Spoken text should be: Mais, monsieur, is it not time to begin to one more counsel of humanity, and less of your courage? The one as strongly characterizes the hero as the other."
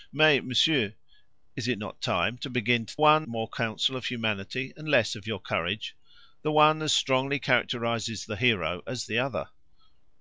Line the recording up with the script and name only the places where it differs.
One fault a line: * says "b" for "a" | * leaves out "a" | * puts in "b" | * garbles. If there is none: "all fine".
all fine